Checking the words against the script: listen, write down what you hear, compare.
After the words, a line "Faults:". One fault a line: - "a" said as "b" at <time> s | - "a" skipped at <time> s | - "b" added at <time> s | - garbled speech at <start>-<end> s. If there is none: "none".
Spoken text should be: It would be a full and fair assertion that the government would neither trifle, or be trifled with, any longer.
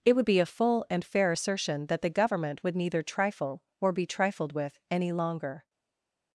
It would be a full and fair assertion that the government would neither trifle, or be trifled with, any longer.
Faults:
none